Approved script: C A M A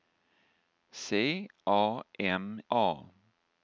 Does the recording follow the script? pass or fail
pass